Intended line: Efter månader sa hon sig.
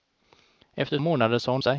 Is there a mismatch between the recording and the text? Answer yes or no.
no